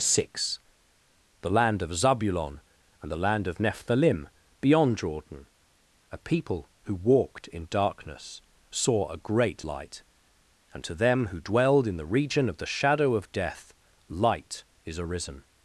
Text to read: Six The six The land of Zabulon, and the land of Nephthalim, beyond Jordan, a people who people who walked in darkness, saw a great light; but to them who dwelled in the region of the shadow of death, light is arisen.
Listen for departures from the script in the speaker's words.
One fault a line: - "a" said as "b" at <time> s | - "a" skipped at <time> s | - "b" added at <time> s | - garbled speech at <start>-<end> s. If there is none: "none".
- "six The" skipped at 1.5 s
- "people who" skipped at 7.0 s
- "but" said as "and" at 10.7 s